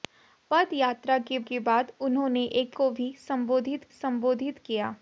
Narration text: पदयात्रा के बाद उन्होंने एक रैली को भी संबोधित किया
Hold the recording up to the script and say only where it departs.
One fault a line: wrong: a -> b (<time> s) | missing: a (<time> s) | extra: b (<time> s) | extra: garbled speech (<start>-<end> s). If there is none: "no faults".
extra: के (1.4 s)
missing: रैली (2.8 s)
extra: संबोधित (3.9 s)